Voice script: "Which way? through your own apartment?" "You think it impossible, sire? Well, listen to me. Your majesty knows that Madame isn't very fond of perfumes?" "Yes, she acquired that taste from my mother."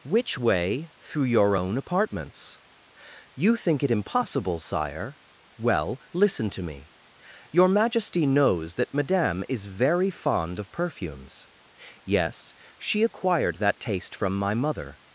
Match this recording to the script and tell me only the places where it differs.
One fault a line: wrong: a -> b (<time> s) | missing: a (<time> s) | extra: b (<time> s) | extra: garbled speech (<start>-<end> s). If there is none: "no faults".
wrong: apartment -> apartments (1.8 s)
wrong: isn't -> is (9.5 s)